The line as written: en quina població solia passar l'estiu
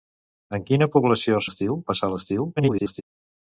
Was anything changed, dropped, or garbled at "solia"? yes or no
yes